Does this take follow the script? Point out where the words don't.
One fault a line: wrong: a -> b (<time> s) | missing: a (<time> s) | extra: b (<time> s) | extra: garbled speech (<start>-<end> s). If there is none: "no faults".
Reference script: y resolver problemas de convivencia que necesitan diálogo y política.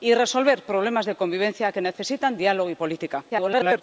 extra: garbled speech (3.3-3.8 s)